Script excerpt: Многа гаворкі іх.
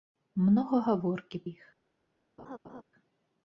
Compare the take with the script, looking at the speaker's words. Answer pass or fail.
pass